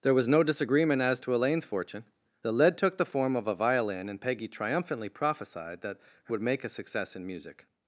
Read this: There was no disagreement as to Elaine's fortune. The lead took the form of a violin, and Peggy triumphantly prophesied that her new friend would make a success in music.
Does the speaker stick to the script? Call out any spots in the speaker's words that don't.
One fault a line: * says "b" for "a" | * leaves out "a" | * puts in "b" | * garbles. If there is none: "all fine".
* leaves out "new friend"